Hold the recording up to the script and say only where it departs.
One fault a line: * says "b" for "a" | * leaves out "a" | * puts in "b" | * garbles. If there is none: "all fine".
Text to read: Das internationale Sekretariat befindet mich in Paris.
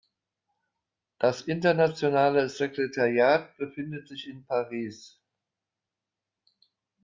* says "sich" for "mich"